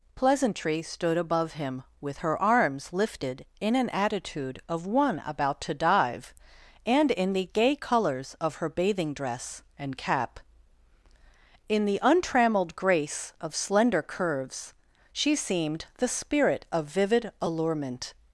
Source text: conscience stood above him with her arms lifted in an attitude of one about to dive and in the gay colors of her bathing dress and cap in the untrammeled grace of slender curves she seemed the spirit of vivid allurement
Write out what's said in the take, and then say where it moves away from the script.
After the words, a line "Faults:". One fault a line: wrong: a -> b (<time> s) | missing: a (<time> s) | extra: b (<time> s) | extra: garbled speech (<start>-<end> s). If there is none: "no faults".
pleasantry stood above him with her arms lifted in an attitude of one about to dive and in the gay colors of her bathing dress and cap in the untrammeled grace of slender curves she seemed the spirit of vivid allurement
Faults:
wrong: conscience -> pleasantry (0.1 s)